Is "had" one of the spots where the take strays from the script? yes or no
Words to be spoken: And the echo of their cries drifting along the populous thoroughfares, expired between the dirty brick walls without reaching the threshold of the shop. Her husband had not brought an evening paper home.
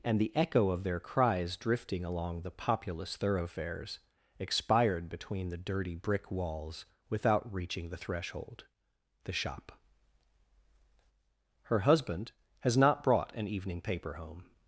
yes